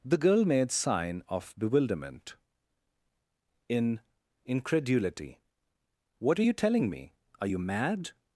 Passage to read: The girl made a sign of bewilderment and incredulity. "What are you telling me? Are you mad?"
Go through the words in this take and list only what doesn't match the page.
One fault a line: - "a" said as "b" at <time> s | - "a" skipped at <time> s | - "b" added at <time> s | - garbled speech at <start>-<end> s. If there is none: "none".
- "a" skipped at 0.7 s
- "and" said as "in" at 3.7 s